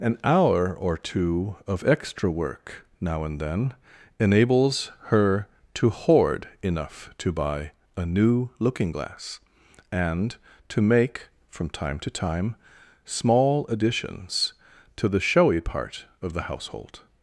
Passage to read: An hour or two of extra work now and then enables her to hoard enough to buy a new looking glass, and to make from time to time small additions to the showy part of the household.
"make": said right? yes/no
yes